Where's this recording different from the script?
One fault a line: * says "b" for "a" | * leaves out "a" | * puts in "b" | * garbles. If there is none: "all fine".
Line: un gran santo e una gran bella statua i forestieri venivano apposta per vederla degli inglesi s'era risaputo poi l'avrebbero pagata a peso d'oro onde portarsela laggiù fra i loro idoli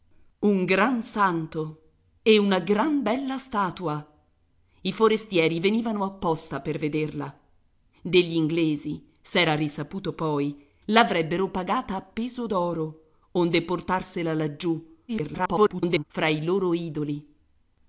* garbles